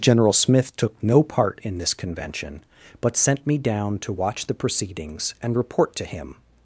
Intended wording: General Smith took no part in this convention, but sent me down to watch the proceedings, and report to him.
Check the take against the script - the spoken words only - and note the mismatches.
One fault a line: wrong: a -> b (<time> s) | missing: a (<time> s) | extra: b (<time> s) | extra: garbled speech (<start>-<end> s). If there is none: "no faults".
no faults